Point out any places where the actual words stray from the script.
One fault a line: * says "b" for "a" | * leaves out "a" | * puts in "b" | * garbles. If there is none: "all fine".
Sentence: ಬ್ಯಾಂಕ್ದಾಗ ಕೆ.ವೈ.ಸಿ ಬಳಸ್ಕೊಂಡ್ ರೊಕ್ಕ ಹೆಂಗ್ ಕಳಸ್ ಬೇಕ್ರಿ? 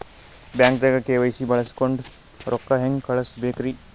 all fine